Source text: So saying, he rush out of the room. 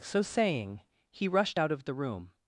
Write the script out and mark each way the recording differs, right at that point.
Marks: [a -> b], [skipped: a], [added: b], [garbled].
So saying, he [rush -> rushed] out of the room.